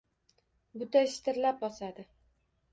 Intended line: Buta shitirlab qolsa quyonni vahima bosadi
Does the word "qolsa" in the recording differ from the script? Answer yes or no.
yes